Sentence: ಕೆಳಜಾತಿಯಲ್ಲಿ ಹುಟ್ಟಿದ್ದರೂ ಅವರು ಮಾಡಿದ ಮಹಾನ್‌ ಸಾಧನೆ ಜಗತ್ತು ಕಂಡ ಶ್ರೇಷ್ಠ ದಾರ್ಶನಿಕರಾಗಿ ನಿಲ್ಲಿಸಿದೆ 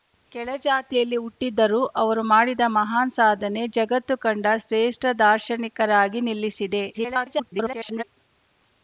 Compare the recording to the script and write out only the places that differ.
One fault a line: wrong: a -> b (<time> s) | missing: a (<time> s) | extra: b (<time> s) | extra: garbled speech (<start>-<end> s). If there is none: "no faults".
extra: garbled speech (6.9-8.0 s)